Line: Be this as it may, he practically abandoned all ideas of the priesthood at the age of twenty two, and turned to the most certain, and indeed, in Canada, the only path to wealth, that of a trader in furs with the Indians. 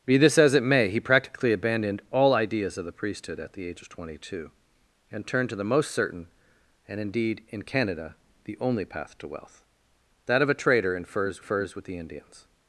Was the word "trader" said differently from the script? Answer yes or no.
no